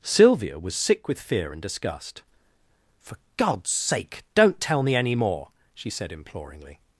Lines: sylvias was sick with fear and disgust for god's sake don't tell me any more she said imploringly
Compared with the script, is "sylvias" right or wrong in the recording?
wrong